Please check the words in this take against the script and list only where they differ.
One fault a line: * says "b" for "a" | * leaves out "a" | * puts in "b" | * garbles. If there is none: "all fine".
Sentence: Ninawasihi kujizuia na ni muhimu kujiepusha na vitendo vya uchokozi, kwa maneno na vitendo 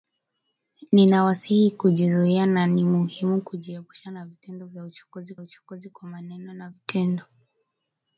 * puts in "uchokozi"